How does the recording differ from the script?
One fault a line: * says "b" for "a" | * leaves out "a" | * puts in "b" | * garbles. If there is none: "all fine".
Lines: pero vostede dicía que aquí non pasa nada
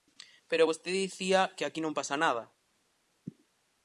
all fine